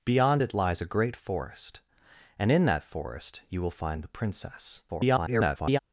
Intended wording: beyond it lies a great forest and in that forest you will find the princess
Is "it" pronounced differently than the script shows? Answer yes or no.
no